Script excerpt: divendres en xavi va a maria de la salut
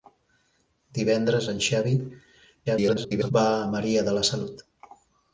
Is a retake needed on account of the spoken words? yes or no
yes